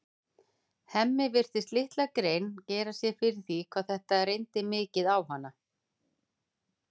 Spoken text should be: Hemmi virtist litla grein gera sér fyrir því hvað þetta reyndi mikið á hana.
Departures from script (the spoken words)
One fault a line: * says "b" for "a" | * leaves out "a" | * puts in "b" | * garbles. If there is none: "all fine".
all fine